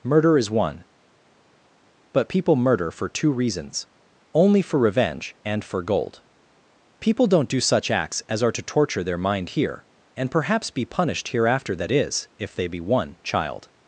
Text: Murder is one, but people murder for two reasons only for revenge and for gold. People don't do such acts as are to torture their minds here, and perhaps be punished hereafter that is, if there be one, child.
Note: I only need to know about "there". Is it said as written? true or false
false